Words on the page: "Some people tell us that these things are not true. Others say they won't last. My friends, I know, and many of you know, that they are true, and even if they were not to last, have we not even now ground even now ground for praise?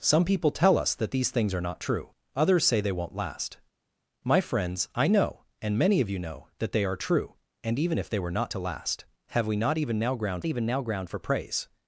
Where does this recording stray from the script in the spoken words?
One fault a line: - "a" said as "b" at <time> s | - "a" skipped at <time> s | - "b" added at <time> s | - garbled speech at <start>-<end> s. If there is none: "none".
none